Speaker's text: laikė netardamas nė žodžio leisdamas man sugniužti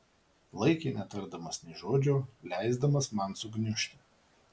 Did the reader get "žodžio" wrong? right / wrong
right